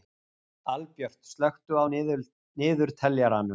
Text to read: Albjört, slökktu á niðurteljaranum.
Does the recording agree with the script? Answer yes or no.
yes